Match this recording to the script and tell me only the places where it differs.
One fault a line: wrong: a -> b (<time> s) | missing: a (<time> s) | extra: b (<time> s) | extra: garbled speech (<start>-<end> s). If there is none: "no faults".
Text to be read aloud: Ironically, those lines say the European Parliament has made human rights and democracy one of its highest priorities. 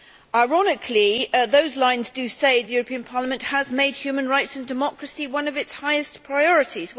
no faults